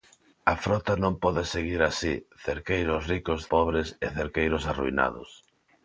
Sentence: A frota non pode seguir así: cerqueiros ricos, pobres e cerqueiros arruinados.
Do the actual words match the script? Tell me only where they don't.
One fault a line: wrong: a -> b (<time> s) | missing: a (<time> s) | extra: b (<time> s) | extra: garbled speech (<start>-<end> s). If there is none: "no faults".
no faults